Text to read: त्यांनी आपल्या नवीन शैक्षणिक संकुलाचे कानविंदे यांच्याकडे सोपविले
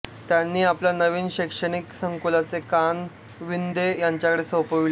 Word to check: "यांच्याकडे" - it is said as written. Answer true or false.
true